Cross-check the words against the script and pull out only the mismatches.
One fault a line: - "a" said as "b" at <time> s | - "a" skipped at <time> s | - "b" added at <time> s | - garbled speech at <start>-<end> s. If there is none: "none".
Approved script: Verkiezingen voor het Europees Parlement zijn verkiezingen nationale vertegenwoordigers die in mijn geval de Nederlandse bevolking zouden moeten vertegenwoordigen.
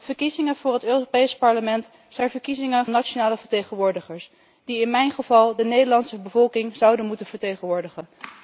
none